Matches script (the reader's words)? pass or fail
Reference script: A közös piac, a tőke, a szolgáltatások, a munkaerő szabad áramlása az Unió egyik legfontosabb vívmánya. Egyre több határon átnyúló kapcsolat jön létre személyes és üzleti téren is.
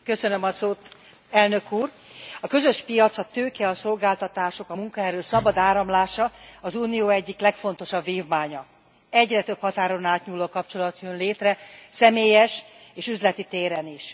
pass